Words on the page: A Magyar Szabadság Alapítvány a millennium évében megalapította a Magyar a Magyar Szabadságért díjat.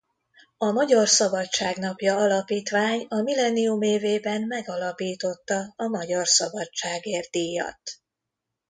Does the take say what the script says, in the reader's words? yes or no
no